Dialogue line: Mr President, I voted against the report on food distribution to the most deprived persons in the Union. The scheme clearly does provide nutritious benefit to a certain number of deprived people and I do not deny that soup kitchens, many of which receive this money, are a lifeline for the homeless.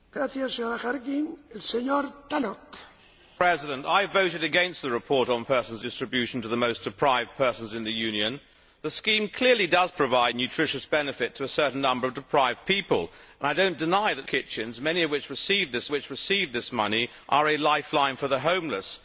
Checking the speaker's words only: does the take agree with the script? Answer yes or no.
no